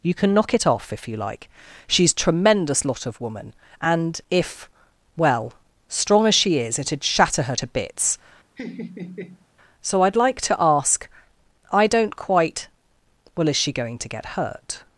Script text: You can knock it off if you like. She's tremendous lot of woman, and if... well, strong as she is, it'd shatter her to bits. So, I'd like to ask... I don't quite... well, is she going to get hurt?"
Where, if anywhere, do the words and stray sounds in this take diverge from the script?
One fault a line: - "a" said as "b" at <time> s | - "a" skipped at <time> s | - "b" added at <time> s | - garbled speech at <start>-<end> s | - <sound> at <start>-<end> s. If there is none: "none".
- laugh at 8.6-9.5 s